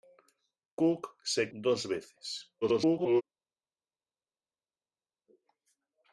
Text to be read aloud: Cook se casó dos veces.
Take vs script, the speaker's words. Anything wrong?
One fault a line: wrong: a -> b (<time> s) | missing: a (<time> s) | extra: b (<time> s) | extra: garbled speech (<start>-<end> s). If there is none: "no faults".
missing: casó (1.5 s)
extra: garbled speech (2.6-3.2 s)